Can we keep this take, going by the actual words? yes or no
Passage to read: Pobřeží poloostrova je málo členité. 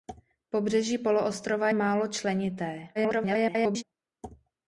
no